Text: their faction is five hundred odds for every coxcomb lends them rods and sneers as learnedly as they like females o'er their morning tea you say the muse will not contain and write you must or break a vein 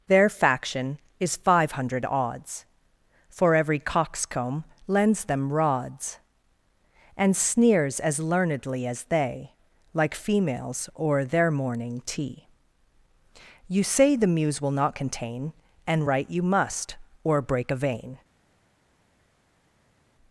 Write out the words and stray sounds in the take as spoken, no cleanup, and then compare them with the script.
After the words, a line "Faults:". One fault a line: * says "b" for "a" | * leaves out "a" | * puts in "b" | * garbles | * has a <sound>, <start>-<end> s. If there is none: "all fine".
their faction is five hundred odds for every coxcomb lends them rods and sneers as learnedly as they like females o'er their morning tea you say the muse will not contain and write you must or break a vein
Faults:
all fine